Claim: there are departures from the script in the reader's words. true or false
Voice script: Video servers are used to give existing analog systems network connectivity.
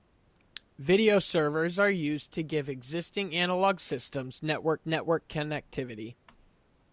true